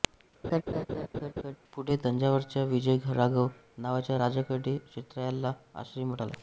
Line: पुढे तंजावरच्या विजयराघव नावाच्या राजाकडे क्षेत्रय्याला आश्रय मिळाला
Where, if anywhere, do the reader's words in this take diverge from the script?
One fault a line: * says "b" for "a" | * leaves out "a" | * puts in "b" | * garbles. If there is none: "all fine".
all fine